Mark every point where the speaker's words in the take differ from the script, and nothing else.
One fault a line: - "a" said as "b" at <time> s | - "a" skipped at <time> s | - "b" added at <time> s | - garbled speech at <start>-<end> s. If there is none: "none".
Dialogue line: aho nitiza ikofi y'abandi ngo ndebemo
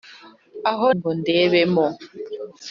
- "nitiza ikofi y'abandi" skipped at 0.9 s